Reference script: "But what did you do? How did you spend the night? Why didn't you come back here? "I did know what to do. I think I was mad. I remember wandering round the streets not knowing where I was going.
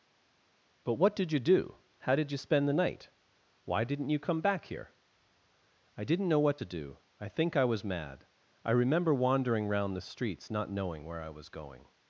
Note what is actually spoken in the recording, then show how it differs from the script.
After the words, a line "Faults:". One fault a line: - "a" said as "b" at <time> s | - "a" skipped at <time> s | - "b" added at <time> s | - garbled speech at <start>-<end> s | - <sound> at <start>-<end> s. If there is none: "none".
"But what did you do? How did you spend the night? Why didn't you come back here? "I didn't know what to do. I think I was mad. I remember wandering round the streets not knowing where I was going.
Faults:
- "did" said as "didn't" at 6.0 s